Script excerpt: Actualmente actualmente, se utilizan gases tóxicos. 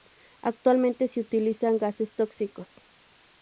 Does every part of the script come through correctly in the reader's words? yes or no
no